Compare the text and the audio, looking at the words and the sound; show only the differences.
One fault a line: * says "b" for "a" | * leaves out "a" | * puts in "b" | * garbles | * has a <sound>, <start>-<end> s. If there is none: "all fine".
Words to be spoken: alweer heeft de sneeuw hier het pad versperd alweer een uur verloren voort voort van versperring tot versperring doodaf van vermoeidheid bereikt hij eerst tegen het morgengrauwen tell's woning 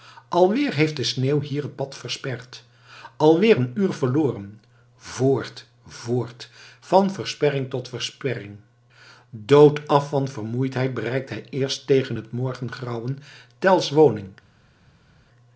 all fine